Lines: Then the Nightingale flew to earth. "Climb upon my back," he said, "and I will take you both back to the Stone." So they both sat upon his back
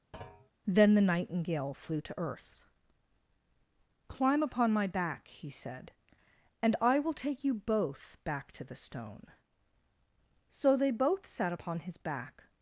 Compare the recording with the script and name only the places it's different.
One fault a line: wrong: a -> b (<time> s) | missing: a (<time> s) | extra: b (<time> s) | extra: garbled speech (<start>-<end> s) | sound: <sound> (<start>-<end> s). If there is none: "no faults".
sound: thud (0.1-0.5 s)